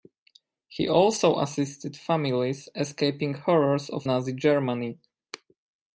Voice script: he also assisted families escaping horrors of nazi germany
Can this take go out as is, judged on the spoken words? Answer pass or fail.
pass